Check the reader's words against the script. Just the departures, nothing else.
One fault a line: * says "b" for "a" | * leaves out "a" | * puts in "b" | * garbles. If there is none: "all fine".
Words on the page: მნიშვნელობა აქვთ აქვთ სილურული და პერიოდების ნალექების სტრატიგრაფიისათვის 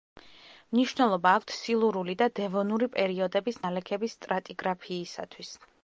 * leaves out "აქვთ"
* puts in "დევონური"